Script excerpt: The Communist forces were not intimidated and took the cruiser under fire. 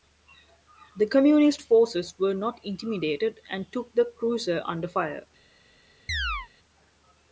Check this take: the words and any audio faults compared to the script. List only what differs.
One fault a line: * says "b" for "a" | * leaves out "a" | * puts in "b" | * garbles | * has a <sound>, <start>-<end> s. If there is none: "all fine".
* has a chirp, 6.1-6.5 s